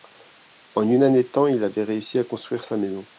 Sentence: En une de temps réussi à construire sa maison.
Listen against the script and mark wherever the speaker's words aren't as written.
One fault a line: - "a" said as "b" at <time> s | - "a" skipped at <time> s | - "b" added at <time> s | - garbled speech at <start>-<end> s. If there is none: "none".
- "année" added at 1.0 s
- "il avait" added at 1.4 s